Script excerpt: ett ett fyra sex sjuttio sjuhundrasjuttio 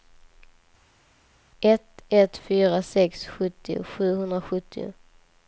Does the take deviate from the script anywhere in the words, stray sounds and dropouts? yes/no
no